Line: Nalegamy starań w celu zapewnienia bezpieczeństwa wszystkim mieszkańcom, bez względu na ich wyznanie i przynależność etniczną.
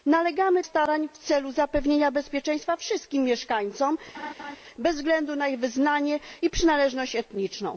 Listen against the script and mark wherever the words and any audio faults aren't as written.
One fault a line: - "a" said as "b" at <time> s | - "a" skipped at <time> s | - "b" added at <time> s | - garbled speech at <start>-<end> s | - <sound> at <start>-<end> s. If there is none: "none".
- laugh at 4.1-4.6 s